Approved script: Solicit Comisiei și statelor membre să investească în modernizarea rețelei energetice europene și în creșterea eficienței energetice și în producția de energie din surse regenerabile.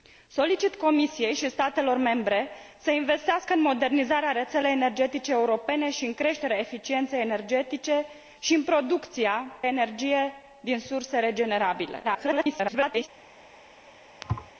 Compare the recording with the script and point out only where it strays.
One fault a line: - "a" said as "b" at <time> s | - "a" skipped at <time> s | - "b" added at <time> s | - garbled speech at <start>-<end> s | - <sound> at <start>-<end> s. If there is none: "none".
- "de" skipped at 9.5 s
- garbled speech at 12.0-13.1 s
- thud at 14.2-14.5 s